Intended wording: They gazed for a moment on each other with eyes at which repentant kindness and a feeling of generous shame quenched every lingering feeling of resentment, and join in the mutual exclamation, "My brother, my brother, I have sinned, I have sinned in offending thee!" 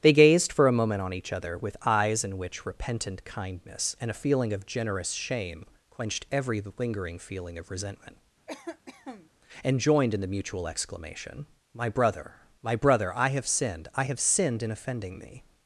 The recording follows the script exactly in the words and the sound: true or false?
false